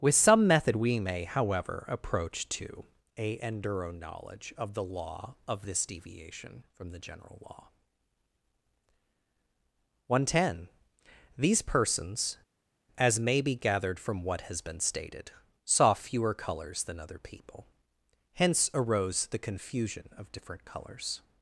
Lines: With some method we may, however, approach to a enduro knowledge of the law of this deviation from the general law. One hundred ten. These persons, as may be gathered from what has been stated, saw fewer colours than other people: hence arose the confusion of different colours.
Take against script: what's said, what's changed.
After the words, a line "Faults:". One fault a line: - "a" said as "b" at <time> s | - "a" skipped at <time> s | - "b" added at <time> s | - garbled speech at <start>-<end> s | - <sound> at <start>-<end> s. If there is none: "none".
With some method we may, however, approach to a enduro knowledge of the law of this deviation from the general law. One hundred ten. These persons, as may be gathered from what has been stated, saw fewer colours than other people: hence arose the confusion of different colours.
Faults:
none